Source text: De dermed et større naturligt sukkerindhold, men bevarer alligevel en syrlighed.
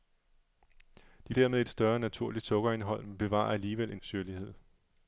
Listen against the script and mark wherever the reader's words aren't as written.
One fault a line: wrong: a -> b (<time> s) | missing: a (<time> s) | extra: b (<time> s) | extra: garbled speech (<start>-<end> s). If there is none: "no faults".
no faults